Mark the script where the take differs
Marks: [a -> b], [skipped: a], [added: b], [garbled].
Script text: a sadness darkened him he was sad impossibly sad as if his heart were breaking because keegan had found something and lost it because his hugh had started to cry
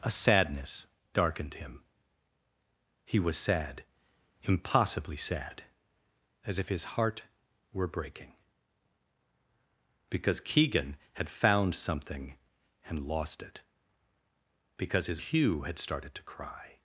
a sadness darkened him he was sad impossibly sad as if his heart were breaking because keegan had found something and lost it because his hugh had started to cry